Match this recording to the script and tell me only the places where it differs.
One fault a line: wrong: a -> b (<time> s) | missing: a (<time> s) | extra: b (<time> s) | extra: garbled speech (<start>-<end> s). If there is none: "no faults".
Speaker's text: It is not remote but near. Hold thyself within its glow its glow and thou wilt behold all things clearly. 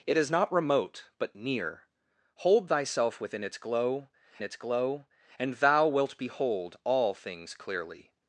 no faults